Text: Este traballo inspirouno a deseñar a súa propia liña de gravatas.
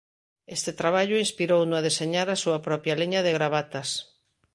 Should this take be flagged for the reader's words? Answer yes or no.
no